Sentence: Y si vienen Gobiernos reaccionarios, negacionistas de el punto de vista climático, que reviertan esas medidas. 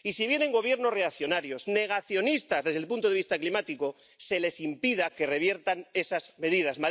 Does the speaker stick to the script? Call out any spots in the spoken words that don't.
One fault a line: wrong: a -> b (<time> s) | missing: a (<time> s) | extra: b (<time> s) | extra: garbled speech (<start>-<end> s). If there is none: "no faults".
wrong: de -> desde (2.6 s)
extra: se les impida (4.2 s)